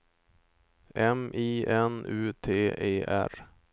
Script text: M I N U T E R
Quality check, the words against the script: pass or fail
pass